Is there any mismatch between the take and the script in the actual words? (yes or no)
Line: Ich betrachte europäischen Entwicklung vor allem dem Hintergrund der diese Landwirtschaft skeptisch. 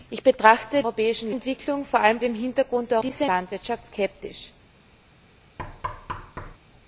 no